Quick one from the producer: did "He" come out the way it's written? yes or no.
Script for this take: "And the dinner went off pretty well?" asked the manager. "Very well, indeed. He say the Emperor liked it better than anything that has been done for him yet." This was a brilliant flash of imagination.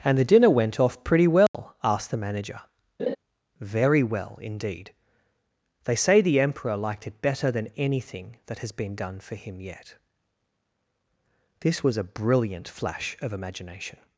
no